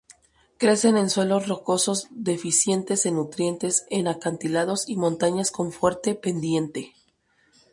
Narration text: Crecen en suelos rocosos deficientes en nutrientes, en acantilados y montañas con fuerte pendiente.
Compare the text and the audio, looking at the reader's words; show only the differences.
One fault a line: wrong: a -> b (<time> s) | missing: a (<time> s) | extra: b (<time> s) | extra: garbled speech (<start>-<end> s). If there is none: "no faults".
no faults